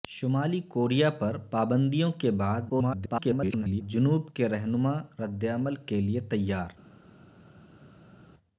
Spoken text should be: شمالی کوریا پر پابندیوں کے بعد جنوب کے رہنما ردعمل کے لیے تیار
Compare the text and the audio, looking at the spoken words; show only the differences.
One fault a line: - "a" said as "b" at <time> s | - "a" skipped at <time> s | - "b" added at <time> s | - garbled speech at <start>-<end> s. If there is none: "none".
- garbled speech at 2.7-3.8 s